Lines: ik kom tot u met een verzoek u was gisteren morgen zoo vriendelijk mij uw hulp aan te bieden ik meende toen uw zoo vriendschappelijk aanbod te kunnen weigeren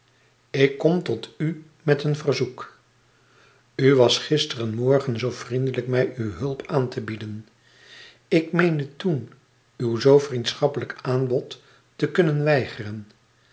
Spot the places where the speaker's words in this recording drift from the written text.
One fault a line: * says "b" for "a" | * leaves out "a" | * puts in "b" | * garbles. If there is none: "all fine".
all fine